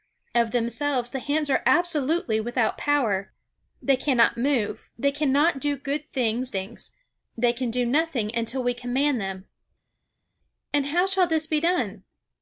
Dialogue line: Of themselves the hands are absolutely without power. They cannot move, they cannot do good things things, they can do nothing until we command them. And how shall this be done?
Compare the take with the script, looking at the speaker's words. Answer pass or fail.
pass